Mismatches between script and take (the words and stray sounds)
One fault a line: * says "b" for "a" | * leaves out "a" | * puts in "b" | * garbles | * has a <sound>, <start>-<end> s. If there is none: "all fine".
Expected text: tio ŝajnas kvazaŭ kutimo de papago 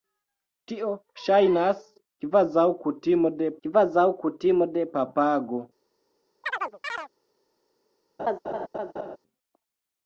* puts in "kvazaŭ kutimo de"
* has a chirp, 6.4-7.1 s
* has a laugh, 8.2-9.2 s